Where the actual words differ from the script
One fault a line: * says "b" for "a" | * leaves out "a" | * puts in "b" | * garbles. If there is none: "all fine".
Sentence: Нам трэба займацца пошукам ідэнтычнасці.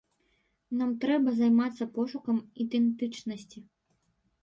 all fine